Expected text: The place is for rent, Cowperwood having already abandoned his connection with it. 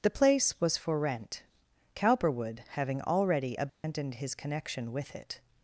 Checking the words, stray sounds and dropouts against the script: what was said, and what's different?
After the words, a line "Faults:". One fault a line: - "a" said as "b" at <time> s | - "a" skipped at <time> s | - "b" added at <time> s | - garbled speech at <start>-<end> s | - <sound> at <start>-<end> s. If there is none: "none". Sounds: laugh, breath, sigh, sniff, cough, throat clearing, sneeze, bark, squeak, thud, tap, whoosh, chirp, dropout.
The place was for rent, Cowperwood having already abandoned his connection with it.
Faults:
- "is" said as "was" at 0.6 s
- dropout at 3.7-3.8 s